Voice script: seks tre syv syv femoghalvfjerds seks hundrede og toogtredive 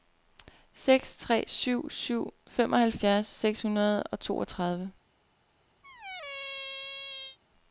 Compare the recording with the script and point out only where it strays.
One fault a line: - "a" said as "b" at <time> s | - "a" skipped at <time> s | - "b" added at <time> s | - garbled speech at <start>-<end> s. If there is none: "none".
none